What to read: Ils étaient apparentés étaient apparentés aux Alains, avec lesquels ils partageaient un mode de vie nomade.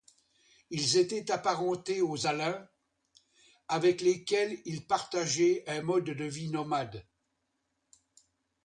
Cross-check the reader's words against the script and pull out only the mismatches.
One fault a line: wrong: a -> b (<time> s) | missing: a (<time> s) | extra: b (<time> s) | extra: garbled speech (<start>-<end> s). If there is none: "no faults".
missing: étaient apparentés (2.0 s)